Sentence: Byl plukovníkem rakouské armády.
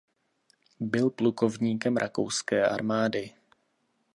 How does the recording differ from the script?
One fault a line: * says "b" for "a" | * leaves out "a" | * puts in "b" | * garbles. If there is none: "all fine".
all fine